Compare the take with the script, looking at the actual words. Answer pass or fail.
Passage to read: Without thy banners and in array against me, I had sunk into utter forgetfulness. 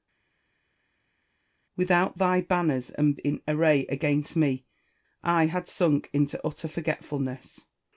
pass